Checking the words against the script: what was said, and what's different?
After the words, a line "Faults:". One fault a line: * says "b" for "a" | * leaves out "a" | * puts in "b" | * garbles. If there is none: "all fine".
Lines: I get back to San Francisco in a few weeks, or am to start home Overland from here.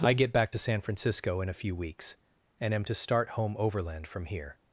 I get back to San Francisco in a few weeks, and am to start home Overland from here.
Faults:
* says "and" for "or"